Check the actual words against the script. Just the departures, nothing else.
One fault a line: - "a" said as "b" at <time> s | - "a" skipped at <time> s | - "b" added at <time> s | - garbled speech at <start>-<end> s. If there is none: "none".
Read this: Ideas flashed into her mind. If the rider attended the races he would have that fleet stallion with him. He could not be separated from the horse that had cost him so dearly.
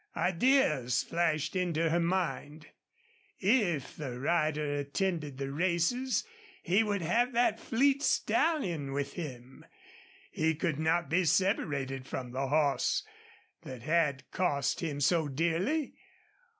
none